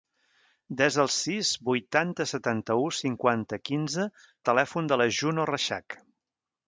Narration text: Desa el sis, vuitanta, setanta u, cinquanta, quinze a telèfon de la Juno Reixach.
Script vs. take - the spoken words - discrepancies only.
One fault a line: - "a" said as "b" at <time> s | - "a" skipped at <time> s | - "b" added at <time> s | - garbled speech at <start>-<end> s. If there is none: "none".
none